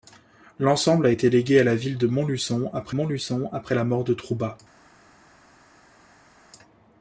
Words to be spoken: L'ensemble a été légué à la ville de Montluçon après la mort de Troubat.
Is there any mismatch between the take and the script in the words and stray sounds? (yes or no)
yes